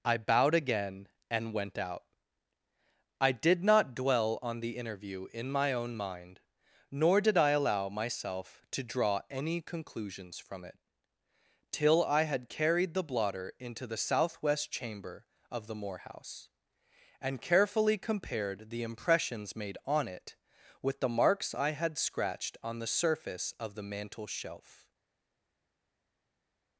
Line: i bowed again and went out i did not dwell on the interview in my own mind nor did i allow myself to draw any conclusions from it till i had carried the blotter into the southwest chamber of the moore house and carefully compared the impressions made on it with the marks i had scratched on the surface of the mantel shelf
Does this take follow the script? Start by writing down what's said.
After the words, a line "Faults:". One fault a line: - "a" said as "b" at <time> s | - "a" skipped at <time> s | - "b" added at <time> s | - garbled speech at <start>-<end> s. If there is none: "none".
i bowed again and went out i did not dwell on the interview in my own mind nor did i allow myself to draw any conclusions from it till i had carried the blotter into the southwest chamber of the moore house and carefully compared the impressions made on it with the marks i had scratched on the surface of the mantel shelf
Faults:
none